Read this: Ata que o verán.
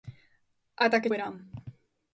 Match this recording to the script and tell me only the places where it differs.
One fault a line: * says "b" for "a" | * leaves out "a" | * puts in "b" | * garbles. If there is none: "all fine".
all fine